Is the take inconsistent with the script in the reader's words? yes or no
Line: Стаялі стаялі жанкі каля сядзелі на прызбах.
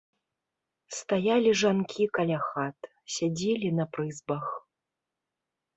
yes